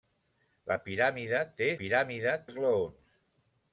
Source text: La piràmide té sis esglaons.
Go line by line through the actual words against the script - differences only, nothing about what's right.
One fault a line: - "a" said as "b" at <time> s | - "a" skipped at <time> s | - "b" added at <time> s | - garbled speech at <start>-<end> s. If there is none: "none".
- "sis" said as "piràmide" at 1.8 s